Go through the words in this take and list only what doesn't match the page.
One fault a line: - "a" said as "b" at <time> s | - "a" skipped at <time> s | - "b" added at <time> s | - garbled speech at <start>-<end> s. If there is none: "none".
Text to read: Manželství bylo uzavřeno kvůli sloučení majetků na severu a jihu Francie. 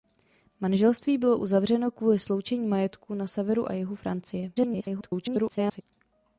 - garbled speech at 4.5-5.8 s